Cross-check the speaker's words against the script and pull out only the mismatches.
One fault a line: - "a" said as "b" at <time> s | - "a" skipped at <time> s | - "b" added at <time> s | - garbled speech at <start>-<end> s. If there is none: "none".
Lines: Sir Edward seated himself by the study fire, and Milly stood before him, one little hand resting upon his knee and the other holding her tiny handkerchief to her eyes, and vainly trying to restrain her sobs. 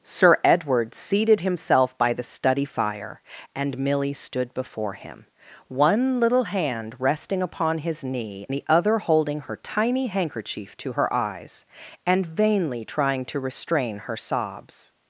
- "and" skipped at 8.5 s